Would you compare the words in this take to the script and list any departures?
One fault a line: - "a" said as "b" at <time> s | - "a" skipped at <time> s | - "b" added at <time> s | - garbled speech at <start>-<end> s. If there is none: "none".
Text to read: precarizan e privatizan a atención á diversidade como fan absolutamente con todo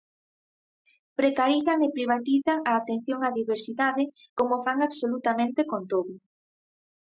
none